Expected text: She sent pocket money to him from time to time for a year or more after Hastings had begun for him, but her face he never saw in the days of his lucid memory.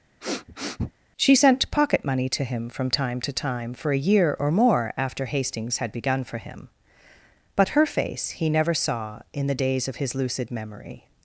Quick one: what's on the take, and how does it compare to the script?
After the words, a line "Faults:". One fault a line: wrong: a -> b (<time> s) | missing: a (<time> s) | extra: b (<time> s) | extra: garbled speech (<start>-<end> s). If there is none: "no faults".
She sent pocket money to him from time to time for a year or more after Hastings had begun for him, but her face he never saw in the days of his lucid memory.
Faults:
no faults